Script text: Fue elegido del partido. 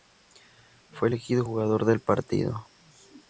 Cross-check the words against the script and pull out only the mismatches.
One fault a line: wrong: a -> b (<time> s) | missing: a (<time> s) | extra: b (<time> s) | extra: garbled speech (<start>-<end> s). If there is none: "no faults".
extra: jugador (1.4 s)